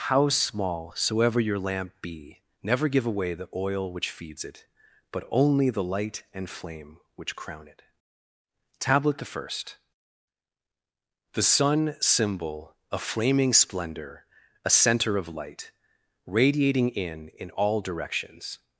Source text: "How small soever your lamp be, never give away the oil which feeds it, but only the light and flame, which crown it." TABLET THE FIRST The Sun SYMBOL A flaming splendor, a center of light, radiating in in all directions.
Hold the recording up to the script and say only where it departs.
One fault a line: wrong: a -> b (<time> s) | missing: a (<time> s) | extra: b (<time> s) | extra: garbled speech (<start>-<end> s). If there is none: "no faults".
no faults